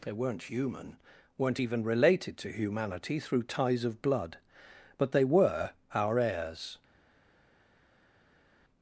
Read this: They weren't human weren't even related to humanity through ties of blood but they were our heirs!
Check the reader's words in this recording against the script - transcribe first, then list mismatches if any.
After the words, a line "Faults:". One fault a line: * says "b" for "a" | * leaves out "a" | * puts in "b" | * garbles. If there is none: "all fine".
They weren't human weren't even related to humanity through ties of blood but they were our heirs!
Faults:
all fine